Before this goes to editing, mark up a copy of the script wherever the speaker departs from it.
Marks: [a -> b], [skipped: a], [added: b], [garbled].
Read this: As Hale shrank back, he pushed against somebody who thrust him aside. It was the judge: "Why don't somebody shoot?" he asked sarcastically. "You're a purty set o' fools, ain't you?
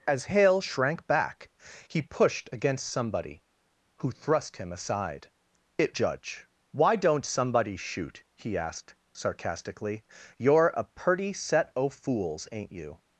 As Hale shrank back, he pushed against somebody who thrust him aside. It [skipped: was the] judge: "Why don't somebody shoot?" he asked sarcastically. "You're a purty set o' fools, ain't you?